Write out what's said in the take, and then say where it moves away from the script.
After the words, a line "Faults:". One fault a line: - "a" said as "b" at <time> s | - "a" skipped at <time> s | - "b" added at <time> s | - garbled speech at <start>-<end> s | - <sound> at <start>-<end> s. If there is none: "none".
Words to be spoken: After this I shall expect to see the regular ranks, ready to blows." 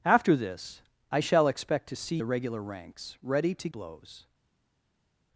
After this I shall expect to see the regular ranks, ready to blows."
Faults:
none